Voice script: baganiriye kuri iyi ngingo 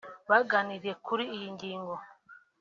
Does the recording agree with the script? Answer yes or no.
yes